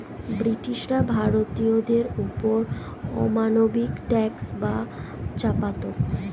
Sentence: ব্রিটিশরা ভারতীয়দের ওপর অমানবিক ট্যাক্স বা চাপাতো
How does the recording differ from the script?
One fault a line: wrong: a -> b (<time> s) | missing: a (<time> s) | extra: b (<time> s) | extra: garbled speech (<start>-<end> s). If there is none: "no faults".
no faults